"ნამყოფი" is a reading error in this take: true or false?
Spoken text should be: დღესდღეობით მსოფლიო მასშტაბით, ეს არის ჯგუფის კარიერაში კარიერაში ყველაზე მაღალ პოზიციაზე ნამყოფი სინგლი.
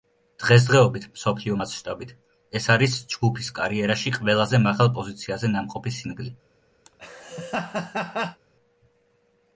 false